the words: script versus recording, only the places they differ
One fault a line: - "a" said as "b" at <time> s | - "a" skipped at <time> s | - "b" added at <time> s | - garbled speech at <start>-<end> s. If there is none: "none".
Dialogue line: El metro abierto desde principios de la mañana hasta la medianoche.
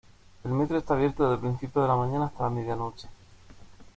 - "está" added at 0.8 s